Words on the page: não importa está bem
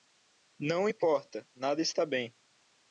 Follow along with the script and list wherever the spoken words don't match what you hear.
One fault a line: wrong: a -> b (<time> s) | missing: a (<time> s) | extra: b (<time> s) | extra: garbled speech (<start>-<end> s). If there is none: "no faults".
extra: nada (1.5 s)